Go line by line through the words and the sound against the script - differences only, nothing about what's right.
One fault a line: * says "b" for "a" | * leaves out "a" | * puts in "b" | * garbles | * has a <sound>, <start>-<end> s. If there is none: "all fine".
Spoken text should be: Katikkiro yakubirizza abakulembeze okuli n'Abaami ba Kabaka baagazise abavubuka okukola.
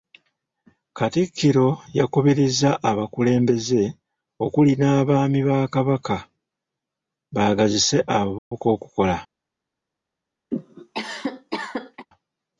* has a dropout, 8.4-8.5 s
* has a cough, 10.5-12.1 s